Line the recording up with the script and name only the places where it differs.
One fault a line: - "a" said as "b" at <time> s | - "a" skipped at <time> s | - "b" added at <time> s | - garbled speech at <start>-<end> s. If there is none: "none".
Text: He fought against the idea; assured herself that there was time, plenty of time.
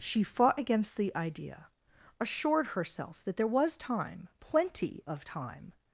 - "He" said as "She" at 0.0 s